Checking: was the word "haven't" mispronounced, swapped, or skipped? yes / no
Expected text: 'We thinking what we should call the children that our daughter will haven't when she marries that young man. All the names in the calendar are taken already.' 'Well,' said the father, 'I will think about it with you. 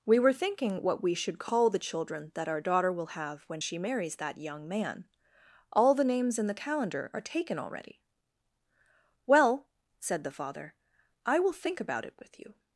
yes